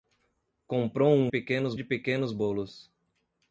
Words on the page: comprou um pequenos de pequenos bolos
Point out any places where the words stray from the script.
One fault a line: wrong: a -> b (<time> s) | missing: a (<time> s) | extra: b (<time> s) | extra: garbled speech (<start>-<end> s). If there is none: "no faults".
no faults